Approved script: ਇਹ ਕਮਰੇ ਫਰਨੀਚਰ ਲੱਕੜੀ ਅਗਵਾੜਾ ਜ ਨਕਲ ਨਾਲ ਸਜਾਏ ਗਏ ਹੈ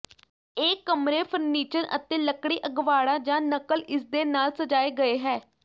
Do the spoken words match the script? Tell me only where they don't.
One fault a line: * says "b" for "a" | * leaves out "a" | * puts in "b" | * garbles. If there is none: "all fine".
* puts in "ਅਤੇ"
* puts in "ਇਸਦੇ"